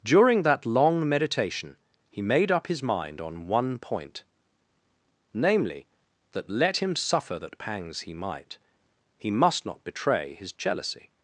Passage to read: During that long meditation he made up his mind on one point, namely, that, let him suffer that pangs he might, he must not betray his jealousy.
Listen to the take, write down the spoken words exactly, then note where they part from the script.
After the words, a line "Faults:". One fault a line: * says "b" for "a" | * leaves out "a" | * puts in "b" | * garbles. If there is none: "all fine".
During that long meditation he made up his mind on one point, namely, that, let him suffer that pangs he might, he must not betray his jealousy.
Faults:
all fine